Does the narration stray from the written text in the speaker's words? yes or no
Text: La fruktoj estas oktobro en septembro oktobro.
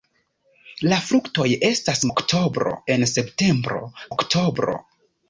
no